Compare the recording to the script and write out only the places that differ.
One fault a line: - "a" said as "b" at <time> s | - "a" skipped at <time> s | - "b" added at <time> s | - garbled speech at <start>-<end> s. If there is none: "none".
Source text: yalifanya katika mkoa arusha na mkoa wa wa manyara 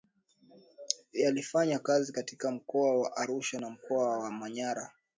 - "kazi" added at 1.8 s
- "wa" added at 3.0 s
- "wa" skipped at 4.3 s